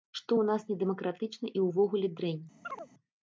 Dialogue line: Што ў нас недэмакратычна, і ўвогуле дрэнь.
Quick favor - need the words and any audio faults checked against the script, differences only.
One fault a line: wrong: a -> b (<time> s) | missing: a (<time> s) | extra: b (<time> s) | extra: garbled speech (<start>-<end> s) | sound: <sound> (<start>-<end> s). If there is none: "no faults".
sound: chirp (2.6-2.9 s)